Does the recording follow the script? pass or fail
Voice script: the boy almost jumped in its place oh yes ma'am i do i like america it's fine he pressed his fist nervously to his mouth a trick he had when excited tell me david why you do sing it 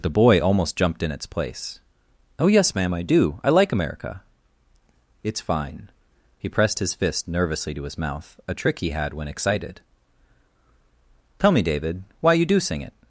pass